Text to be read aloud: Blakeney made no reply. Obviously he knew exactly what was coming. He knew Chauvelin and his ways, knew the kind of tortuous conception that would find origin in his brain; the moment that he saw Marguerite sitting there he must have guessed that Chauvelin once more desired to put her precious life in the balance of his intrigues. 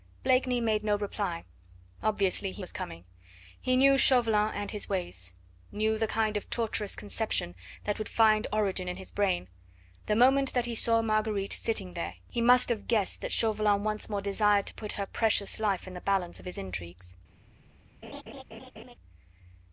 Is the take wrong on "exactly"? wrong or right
wrong